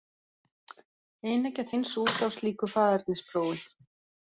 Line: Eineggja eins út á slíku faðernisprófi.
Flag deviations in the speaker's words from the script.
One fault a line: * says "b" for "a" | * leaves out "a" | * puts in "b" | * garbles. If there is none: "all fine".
all fine